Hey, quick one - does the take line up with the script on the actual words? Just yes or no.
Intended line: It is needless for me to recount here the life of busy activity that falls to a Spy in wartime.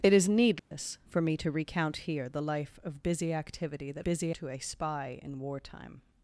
no